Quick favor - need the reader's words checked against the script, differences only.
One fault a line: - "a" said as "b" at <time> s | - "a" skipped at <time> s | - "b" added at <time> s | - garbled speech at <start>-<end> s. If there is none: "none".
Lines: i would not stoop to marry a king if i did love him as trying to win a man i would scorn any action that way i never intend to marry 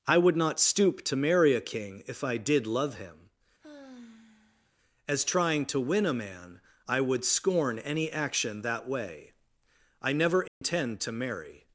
none